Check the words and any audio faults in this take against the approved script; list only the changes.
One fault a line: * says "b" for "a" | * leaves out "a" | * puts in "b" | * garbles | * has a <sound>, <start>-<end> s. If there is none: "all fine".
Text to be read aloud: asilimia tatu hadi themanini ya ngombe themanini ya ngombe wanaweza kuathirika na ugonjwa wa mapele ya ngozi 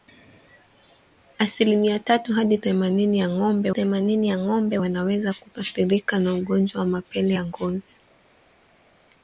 all fine